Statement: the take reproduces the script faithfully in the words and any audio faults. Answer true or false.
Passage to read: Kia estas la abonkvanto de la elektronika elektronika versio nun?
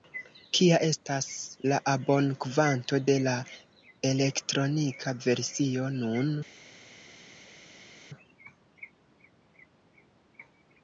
false